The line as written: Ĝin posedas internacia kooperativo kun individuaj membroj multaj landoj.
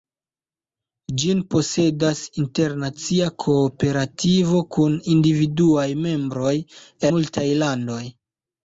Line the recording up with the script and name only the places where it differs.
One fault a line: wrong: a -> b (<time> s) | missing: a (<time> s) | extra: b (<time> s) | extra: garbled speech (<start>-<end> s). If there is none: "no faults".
no faults